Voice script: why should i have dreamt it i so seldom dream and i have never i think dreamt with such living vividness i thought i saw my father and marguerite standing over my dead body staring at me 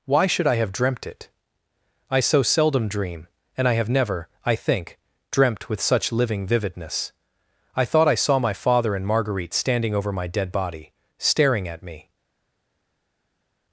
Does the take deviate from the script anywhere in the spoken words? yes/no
no